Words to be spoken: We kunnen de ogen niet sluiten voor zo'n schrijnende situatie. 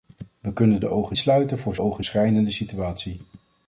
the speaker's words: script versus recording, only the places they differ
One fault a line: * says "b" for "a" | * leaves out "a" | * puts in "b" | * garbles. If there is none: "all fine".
* leaves out "niet"
* says "ogen" for "zo'n"